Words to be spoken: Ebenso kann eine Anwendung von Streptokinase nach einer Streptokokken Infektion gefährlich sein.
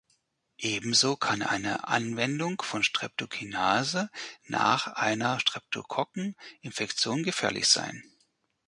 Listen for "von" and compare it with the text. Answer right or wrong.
right